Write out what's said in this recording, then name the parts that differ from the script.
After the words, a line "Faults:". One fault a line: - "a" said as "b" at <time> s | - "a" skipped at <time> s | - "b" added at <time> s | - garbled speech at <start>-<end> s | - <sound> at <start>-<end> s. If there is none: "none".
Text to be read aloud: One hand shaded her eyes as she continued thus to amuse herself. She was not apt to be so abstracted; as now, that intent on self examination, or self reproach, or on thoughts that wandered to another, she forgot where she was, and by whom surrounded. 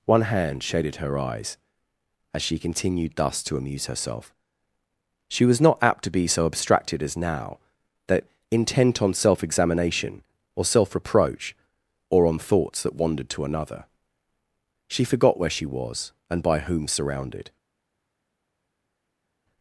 One hand shaded her eyes as she continued thus to amuse herself. She was not apt to be so abstracted; as now, that intent on self examination, or self reproach, or on thoughts that wandered to another, she forgot where she was, and by whom surrounded.
Faults:
none